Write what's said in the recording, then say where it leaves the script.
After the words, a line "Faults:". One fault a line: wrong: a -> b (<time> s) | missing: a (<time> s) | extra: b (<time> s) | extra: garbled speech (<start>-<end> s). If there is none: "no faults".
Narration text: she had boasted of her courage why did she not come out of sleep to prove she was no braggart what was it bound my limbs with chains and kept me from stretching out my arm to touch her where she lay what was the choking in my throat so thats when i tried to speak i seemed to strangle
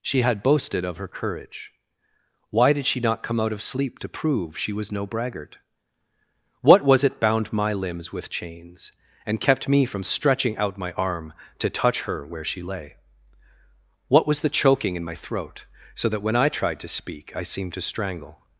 she had boasted of her courage why did she not come out of sleep to prove she was no braggart what was it bound my limbs with chains and kept me from stretching out my arm to touch her where she lay what was the choking in my throat so that when i tried to speak i seemed to strangle
Faults:
wrong: thats -> that (16.1 s)